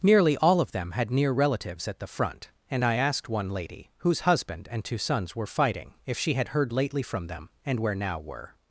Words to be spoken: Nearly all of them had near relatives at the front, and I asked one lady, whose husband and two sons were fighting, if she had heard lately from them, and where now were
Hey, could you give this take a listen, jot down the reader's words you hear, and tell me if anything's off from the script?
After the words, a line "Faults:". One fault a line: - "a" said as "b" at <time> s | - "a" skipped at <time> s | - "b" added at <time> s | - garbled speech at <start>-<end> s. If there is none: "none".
Nearly all of them had near relatives at the front, and I asked one lady, whose husband and two sons were fighting, if she had heard lately from them, and where now were
Faults:
none